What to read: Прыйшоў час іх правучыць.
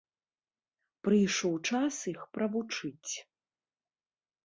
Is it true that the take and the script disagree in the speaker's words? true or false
false